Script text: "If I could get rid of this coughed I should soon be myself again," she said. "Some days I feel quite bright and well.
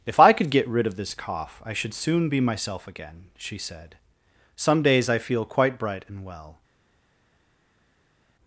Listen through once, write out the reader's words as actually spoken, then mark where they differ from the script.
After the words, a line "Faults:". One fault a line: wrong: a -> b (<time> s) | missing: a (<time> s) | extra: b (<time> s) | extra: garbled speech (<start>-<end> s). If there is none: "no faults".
"If I could get rid of this cough I should soon be myself again," she said. "Some days I feel quite bright and well.
Faults:
wrong: coughed -> cough (1.1 s)